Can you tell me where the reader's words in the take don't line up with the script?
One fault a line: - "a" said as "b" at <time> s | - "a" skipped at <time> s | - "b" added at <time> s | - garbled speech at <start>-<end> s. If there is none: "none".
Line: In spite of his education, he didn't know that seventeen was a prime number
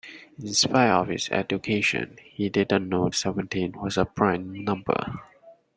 - "that" skipped at 3.1 s